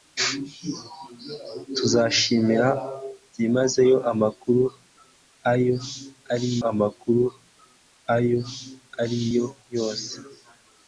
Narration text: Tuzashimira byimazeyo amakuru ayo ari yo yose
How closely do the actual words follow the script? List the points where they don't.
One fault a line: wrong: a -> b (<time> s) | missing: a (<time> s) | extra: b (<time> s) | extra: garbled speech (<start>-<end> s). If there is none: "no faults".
extra: amakuru ayo ari (6.7 s)